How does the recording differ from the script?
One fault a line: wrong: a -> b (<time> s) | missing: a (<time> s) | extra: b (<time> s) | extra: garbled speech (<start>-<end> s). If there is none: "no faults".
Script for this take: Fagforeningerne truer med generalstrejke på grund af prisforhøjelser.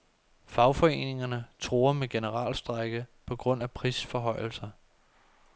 no faults